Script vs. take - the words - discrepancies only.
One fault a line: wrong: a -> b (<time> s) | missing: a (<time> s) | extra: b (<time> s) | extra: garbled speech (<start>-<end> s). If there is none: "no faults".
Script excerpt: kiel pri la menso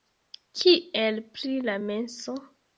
no faults